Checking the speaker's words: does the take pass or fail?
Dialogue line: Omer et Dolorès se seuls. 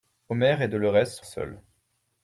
pass